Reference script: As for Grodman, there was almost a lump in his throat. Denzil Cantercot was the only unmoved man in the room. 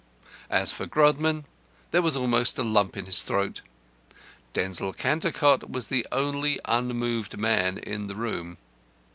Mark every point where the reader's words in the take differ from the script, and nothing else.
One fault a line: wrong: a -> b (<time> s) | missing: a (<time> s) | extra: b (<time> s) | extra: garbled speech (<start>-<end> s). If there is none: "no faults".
no faults